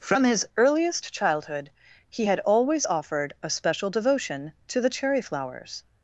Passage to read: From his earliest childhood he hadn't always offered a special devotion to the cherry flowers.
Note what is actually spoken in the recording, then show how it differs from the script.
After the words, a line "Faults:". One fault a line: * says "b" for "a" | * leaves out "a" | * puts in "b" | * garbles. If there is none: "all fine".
From his earliest childhood he had always offered a special devotion to the cherry flowers.
Faults:
* says "had" for "hadn't"